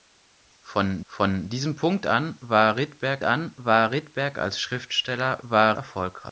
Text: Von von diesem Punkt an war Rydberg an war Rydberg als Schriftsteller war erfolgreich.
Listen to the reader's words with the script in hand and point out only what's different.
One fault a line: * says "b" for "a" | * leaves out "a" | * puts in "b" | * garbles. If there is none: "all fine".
all fine